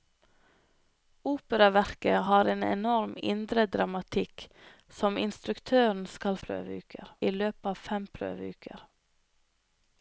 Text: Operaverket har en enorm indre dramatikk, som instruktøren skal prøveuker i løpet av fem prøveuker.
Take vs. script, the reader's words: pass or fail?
pass